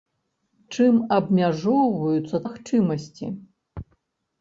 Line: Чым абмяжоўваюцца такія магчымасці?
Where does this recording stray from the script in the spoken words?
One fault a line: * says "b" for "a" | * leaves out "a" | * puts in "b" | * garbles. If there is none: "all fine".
* leaves out "такія"